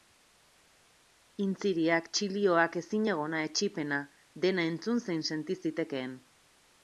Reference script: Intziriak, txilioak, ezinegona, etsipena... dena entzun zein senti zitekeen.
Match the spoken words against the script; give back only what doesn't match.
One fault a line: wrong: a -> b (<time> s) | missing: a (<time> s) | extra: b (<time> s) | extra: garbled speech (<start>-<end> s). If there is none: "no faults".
no faults